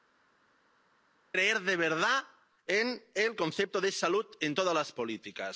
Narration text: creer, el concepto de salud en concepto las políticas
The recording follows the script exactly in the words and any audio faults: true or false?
false